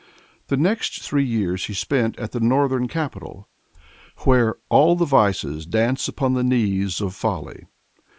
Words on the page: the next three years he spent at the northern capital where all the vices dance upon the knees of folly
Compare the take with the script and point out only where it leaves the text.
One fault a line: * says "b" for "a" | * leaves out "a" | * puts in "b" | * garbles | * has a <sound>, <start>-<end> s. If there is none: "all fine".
all fine